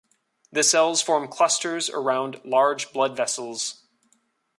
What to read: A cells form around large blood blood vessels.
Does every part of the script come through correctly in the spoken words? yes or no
no